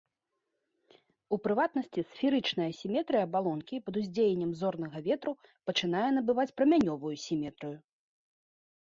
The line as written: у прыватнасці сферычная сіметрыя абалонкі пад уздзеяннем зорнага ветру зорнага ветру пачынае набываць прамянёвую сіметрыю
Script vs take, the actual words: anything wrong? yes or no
yes